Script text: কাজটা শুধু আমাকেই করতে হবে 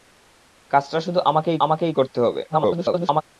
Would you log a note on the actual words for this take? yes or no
yes